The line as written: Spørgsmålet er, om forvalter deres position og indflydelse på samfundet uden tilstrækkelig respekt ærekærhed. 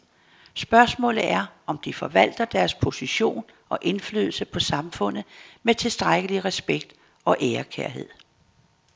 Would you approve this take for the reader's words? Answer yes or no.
no